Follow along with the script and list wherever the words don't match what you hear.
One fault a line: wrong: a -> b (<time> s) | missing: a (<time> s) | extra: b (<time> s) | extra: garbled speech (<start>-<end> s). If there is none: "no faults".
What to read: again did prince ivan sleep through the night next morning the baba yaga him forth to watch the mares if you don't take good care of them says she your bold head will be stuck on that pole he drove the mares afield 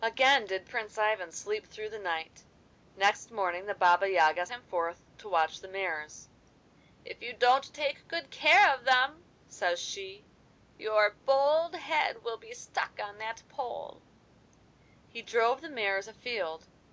no faults